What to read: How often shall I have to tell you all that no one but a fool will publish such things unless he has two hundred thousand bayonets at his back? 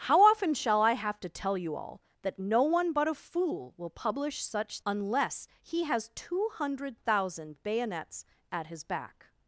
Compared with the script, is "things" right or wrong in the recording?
wrong